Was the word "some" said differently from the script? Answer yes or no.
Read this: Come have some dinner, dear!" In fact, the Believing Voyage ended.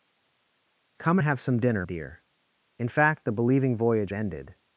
no